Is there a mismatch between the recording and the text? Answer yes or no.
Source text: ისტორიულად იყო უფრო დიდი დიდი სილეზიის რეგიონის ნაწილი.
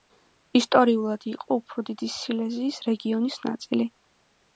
yes